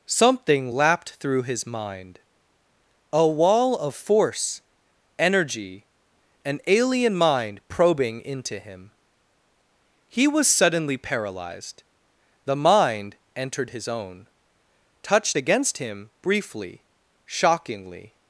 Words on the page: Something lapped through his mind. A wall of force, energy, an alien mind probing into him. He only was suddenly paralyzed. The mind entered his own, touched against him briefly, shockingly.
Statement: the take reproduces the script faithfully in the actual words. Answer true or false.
false